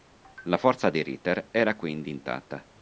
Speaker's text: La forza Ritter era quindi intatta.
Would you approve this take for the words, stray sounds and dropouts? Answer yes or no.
no